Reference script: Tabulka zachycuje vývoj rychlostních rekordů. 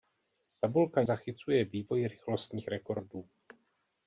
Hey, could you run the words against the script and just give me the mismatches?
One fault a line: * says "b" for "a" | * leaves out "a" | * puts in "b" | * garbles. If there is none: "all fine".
all fine